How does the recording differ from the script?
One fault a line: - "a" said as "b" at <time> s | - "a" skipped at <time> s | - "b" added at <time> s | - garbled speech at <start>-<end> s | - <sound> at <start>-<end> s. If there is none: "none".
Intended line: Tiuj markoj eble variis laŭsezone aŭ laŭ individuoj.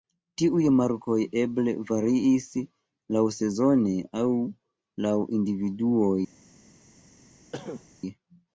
- cough at 7.5-7.9 s